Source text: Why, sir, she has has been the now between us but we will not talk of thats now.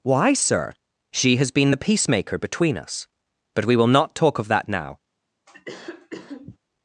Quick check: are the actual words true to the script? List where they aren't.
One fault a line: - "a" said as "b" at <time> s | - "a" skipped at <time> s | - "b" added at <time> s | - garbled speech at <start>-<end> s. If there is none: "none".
- "has" skipped at 1.5 s
- "now" said as "peacemaker" at 1.8 s
- "thats" said as "that" at 4.5 s